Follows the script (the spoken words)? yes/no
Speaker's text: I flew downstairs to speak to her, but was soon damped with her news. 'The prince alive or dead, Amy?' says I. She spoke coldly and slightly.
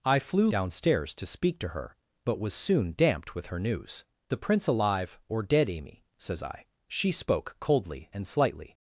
yes